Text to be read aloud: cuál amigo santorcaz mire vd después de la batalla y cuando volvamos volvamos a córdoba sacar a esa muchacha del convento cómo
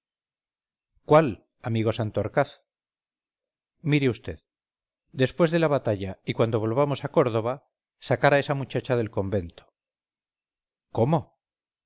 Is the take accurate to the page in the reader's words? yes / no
no